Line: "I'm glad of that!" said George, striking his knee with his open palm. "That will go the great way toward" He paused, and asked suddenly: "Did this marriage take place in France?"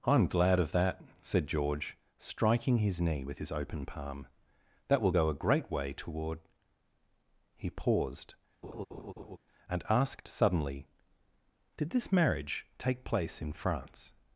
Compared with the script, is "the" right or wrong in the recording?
wrong